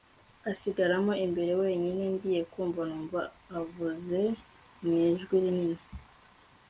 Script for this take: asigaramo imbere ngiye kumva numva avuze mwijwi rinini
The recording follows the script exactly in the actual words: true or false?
false